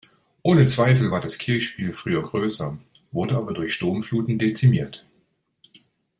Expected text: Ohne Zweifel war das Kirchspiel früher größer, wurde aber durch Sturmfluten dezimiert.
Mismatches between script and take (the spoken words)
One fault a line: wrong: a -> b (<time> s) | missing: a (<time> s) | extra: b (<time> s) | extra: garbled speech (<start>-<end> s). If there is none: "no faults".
no faults